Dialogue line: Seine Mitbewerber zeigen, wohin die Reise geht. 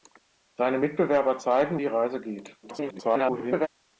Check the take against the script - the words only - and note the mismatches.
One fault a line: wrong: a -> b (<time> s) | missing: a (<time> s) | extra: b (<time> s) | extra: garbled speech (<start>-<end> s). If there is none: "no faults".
missing: wohin (1.8 s)
extra: garbled speech (2.6-3.7 s)